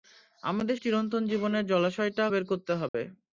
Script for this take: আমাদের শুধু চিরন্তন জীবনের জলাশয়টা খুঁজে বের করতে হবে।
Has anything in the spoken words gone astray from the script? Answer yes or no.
yes